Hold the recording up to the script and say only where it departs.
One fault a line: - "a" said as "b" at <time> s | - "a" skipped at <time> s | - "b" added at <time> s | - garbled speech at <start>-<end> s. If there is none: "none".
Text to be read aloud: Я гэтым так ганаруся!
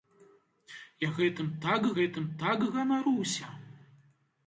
- "гэтым так" added at 2.0 s